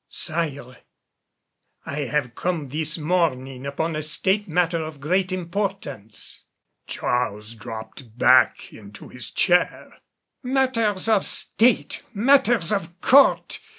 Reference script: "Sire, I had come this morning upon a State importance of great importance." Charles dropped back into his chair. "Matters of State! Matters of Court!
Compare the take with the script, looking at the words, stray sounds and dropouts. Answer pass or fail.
fail